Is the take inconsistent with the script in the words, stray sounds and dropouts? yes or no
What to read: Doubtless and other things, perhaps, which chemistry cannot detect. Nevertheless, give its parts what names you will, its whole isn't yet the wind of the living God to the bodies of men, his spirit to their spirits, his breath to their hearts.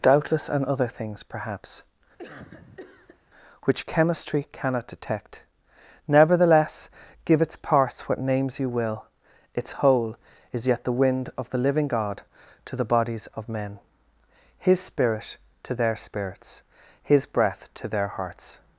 yes